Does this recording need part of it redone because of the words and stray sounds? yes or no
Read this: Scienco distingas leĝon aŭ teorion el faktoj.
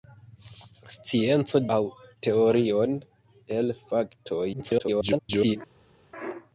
yes